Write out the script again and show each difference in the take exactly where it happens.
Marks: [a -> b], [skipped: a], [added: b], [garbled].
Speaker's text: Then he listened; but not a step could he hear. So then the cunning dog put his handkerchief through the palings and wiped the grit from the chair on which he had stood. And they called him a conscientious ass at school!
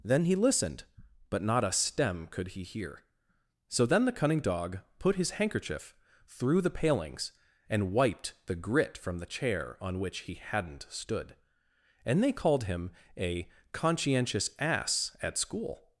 Then he listened; but not a [step -> stem] could he hear. So then the cunning dog put his handkerchief through the palings and wiped the grit from the chair on which he [had -> hadn't] stood. And they called him a conscientious ass at school!